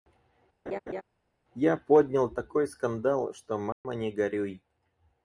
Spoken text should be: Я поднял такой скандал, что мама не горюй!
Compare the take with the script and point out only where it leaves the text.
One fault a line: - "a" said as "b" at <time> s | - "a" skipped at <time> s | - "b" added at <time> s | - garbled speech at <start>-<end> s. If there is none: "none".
none